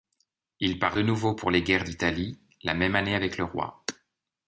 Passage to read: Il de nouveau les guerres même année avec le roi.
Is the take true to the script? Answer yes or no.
no